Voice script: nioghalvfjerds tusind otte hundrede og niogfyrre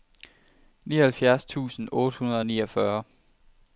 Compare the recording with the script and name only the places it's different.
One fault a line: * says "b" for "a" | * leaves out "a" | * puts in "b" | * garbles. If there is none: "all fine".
all fine